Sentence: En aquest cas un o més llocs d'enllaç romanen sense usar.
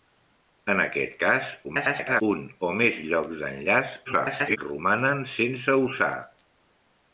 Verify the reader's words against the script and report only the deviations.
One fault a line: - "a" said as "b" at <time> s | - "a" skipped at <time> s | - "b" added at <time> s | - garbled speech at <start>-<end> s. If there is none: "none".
- garbled speech at 1.6-2.2 s
- garbled speech at 4.0-4.6 s